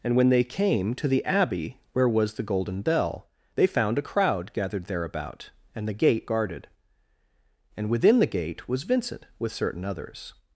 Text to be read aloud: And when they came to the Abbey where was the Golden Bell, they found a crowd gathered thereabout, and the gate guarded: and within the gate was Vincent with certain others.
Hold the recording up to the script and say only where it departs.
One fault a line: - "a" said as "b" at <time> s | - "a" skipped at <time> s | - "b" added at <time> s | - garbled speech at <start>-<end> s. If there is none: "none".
none